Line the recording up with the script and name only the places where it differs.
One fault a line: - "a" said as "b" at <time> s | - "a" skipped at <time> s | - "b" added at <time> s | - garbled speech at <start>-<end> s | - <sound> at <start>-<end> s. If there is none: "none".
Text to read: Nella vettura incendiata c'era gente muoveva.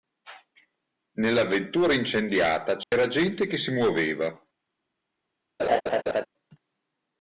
- dropout at 2.8-2.9 s
- "che si" added at 3.5 s
- laugh at 5.6-6.3 s